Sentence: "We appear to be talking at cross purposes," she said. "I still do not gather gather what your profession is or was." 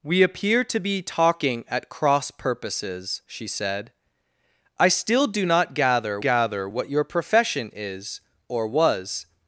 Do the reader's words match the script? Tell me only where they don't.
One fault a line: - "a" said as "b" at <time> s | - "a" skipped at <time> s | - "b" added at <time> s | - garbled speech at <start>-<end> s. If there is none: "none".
none